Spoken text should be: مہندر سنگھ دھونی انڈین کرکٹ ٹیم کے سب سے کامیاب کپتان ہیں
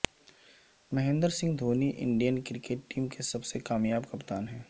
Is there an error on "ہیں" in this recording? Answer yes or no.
no